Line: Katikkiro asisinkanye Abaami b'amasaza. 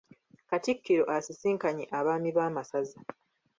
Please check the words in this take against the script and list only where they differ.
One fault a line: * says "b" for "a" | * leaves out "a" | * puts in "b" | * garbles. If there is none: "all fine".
all fine